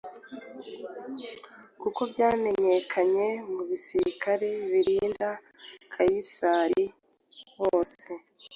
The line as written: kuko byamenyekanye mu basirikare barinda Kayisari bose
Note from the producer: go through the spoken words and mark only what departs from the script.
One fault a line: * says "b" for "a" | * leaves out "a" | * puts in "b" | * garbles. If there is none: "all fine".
all fine